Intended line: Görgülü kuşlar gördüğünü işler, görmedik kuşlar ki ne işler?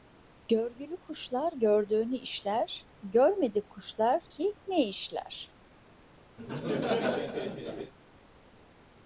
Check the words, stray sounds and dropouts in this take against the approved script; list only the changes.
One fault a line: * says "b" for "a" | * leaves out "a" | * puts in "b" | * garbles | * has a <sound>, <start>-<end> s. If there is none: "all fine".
* has a laugh, 6.4-7.9 s